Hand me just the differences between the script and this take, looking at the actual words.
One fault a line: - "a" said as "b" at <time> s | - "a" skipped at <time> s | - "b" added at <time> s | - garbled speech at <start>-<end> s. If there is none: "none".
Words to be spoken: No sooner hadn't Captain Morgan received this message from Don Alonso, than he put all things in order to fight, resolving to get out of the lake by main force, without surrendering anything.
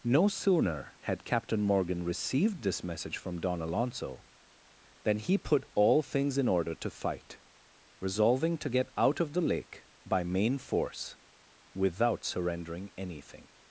- "hadn't" said as "had" at 1.0 s